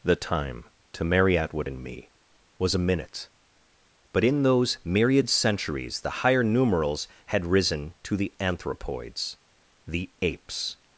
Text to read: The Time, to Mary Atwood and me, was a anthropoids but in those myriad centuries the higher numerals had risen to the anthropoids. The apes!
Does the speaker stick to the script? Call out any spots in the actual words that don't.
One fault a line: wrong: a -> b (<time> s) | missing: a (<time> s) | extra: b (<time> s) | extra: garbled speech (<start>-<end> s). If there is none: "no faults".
wrong: anthropoids -> minute (2.8 s)